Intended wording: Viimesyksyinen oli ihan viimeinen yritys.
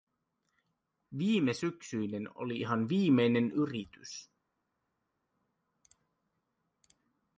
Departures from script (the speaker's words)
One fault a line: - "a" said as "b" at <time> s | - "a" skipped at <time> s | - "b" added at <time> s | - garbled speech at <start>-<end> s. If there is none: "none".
none